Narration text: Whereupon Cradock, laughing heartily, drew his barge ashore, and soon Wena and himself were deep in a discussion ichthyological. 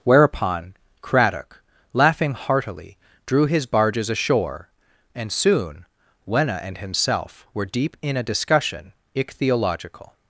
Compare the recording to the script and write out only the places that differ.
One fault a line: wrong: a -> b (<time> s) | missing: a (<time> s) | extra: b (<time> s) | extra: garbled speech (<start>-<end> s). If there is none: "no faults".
wrong: barge -> barges (3.6 s)